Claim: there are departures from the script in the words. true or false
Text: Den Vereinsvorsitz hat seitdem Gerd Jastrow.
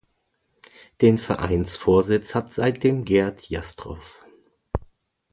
false